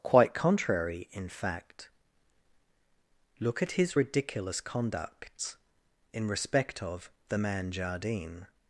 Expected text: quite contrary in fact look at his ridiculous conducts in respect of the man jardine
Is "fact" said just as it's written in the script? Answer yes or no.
yes